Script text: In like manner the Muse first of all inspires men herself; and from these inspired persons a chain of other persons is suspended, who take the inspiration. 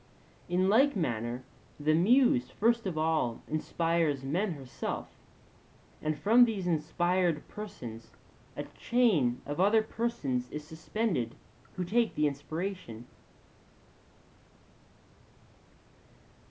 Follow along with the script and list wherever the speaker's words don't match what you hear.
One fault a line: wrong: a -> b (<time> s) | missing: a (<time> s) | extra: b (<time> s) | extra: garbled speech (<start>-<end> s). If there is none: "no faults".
no faults